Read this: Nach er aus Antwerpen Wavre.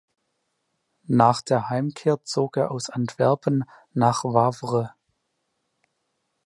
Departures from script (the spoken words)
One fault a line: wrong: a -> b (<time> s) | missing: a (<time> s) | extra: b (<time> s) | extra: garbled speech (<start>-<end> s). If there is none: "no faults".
extra: der Heimkehr zog (1.4 s)
extra: nach (3.9 s)